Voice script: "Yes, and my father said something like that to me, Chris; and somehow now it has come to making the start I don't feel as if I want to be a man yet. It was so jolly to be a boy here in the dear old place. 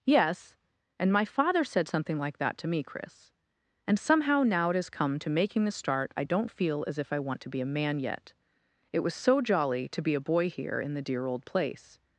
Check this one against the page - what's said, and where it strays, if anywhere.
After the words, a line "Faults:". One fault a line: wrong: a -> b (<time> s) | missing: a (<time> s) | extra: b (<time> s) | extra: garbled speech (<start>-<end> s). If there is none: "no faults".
"Yes, and my father said something like that to me, Chris; and somehow now it has come to making the start I don't feel as if I want to be a man yet. It was so jolly to be a boy here in the dear old place.
Faults:
no faults